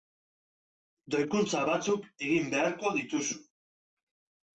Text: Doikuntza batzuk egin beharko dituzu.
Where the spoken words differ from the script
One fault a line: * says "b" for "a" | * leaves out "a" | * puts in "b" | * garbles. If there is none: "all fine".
all fine